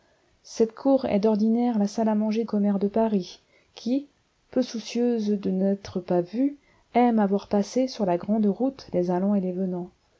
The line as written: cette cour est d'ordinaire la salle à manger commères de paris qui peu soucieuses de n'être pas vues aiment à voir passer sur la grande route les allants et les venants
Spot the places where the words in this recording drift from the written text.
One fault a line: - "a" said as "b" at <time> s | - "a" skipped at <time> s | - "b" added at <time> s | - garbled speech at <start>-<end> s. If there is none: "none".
none